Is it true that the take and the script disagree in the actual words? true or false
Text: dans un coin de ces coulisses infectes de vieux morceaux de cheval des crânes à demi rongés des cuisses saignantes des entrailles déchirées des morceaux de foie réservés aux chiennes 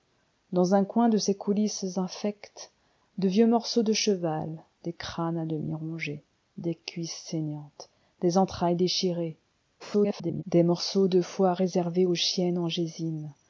true